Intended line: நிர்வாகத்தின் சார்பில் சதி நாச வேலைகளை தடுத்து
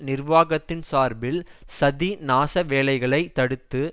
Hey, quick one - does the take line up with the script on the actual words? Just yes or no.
yes